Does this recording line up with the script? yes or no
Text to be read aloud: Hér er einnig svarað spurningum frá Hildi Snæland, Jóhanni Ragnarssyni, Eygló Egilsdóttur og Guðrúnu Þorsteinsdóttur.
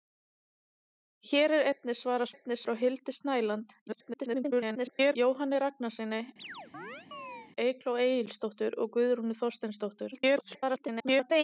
no